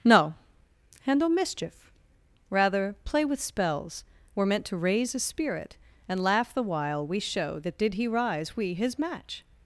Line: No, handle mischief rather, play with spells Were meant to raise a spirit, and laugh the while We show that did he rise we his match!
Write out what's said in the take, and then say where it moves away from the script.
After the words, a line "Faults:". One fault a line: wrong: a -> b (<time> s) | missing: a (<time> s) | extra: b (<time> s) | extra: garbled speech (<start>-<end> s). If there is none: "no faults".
No, handle mischief rather, play with spells Were meant to raise a spirit, and laugh the while We show that did he rise we his match!
Faults:
no faults